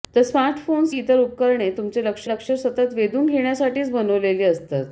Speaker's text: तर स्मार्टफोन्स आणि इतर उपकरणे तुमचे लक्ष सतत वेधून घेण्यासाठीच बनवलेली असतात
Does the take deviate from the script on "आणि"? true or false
true